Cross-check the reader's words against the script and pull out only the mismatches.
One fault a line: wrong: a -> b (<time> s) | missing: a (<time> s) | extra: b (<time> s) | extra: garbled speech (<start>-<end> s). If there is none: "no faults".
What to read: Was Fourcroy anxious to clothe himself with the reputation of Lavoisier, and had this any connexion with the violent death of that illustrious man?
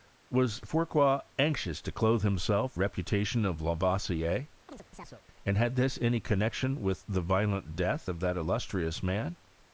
missing: with the (2.8 s)